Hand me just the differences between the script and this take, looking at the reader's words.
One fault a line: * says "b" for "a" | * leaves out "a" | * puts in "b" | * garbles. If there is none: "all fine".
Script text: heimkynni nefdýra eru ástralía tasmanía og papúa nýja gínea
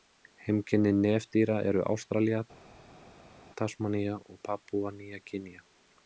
all fine